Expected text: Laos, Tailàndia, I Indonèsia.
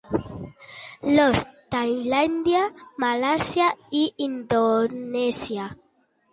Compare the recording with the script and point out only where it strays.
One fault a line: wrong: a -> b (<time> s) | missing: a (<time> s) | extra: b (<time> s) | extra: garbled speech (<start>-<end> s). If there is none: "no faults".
extra: Malàisia (3.0 s)